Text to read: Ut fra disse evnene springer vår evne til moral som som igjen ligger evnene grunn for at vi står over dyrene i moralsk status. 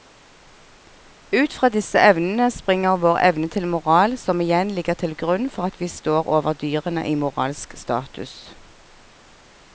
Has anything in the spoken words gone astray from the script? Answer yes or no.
yes